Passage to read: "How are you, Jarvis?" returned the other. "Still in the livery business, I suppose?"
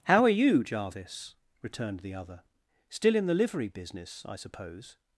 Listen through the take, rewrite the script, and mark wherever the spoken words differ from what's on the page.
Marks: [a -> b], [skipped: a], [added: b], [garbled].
"How are you, Jarvis?" returned the other. "Still in the livery business, I suppose?"